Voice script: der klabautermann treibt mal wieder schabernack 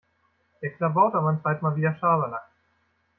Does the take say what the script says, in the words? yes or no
yes